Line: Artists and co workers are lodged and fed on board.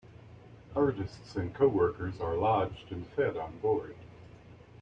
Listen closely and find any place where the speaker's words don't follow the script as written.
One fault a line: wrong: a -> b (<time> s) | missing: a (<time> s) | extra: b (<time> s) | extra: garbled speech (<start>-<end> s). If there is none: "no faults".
no faults